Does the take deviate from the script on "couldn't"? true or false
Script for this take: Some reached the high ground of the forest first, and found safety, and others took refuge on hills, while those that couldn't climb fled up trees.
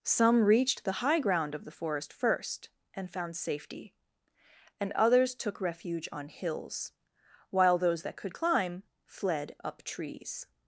true